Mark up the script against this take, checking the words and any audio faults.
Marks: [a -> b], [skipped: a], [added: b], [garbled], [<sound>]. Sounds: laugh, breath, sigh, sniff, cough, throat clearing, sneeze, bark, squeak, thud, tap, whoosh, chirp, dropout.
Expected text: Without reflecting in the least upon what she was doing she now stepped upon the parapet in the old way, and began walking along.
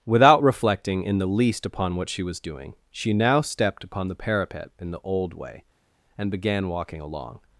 Without reflecting in the least upon what she was doing she now stepped upon the parapet in the old way, and began walking along.